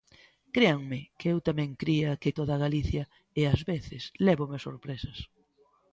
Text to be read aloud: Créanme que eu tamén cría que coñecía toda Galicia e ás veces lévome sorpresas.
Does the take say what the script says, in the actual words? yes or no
no